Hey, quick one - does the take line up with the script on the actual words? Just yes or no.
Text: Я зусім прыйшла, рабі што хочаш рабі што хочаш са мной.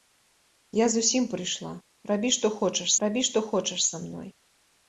yes